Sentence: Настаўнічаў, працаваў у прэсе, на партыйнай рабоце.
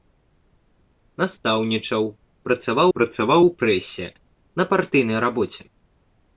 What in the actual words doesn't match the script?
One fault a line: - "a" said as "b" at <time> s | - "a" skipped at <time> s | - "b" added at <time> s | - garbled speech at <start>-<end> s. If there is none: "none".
- "працаваў" added at 3.0 s